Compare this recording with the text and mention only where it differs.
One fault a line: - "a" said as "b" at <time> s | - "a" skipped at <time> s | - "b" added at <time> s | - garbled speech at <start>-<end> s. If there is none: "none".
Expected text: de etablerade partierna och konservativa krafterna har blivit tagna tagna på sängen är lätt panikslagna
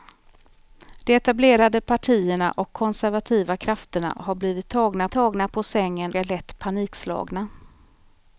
none